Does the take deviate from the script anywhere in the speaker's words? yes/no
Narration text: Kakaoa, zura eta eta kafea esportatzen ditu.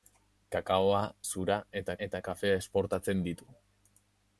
no